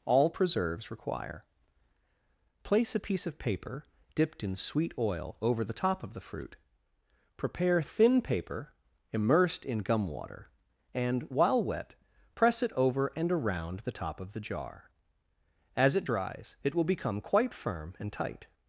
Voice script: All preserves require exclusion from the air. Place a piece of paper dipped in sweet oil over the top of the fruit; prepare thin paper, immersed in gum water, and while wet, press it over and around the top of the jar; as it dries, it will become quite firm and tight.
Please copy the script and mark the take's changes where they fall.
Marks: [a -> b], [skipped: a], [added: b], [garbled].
All preserves require [skipped: exclusion from the air.] Place a piece of paper dipped in sweet oil over the top of the fruit; prepare thin paper, immersed in gum water, and while wet, press it over and around the top of the jar; as it dries, it will become quite firm and tight.